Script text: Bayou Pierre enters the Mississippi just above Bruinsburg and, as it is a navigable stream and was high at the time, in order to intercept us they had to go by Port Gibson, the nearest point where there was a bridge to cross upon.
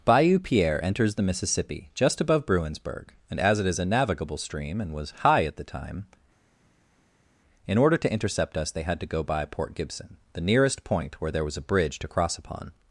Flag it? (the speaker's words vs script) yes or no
no